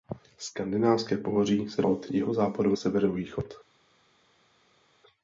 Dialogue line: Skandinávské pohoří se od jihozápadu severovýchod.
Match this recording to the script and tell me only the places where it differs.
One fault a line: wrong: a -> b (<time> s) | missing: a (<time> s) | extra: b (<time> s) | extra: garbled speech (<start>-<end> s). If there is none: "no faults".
no faults